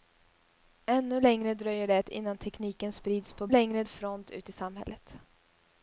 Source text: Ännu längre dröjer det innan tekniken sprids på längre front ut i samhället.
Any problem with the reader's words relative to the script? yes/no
no